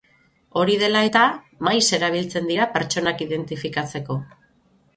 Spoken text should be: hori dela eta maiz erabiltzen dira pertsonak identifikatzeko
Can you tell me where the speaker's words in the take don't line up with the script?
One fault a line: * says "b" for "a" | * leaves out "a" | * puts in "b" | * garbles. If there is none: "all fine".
all fine